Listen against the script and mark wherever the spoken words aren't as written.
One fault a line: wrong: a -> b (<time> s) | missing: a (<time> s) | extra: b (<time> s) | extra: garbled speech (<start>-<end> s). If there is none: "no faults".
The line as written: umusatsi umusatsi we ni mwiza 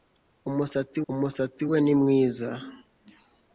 no faults